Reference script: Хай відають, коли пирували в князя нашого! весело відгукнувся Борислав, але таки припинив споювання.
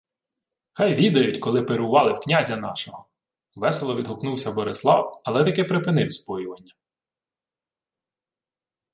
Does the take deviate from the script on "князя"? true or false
false